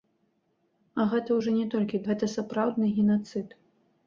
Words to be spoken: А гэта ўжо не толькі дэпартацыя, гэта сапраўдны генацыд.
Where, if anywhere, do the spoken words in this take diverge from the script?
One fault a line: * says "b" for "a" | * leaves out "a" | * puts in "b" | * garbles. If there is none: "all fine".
* leaves out "дэпартацыя"